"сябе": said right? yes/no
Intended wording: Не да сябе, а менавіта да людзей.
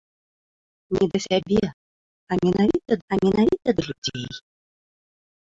yes